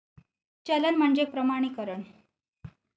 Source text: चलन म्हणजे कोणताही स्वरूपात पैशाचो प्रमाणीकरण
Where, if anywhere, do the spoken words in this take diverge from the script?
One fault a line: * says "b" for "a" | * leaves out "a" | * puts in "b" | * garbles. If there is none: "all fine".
* leaves out "कोणताही स्वरूपात पैशाचो"